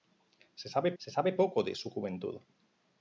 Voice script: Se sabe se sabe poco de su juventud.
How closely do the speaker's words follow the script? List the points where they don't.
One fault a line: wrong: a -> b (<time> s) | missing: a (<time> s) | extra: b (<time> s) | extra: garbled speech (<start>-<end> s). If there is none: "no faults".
no faults